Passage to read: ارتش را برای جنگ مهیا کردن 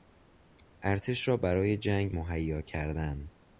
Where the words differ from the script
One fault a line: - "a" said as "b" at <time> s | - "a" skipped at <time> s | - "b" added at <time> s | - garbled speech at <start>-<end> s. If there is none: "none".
none